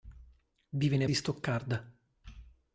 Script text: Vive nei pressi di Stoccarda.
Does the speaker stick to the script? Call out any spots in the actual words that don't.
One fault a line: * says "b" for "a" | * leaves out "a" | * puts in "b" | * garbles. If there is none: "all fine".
* leaves out "pressi"